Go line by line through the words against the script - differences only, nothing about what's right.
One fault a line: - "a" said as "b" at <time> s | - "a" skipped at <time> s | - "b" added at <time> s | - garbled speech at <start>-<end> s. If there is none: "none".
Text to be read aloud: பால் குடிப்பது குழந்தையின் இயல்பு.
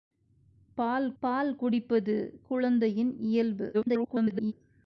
- "பால்" added at 1.2 s
- garbled speech at 3.7-4.5 s